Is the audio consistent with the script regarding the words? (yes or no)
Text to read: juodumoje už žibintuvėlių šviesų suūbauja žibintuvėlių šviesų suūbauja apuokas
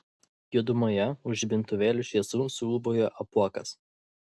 no